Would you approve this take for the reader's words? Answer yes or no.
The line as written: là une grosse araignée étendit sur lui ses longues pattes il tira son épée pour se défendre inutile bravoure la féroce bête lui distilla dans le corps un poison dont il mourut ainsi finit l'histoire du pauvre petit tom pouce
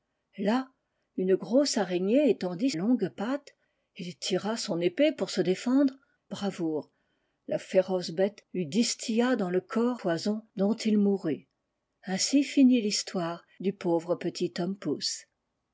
no